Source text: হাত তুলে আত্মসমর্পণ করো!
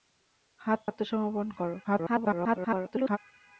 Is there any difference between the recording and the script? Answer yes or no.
yes